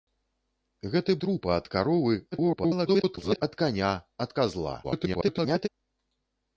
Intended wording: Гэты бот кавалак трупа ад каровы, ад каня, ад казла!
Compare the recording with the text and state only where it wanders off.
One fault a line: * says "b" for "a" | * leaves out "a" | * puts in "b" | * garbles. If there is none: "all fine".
* leaves out "бот кавалак"
* garbles
* garbles